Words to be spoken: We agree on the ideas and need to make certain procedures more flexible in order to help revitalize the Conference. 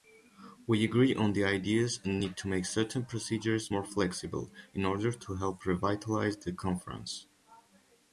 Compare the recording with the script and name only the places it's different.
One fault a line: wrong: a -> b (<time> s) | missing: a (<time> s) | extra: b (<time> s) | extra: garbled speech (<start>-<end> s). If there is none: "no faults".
no faults